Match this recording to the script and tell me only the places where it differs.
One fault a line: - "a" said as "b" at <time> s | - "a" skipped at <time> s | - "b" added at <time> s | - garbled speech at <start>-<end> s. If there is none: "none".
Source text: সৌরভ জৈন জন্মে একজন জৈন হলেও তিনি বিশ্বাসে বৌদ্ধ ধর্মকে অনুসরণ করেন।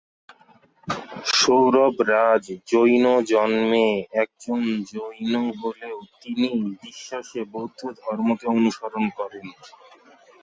- "রাজ" added at 2.1 s